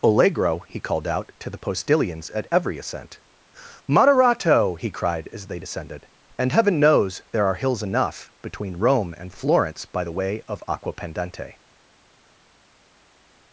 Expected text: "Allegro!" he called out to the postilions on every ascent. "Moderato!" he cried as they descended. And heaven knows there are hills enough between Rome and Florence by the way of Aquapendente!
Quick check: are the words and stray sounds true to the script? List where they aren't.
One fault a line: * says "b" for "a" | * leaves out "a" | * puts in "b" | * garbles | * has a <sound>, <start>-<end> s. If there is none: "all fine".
* says "at" for "on"